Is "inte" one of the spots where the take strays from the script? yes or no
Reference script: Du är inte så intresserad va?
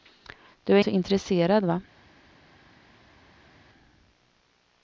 yes